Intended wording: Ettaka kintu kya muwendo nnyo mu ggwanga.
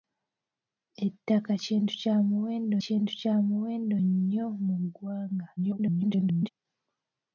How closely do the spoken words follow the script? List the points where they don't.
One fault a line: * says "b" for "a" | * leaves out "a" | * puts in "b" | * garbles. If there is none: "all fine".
* puts in "kintu kya muwendo"
* garbles